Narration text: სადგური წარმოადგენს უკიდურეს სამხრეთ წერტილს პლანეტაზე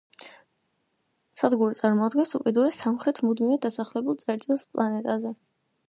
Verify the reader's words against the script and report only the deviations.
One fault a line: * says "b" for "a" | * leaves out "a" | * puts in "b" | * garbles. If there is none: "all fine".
* puts in "მუდმივად დასახლებულ"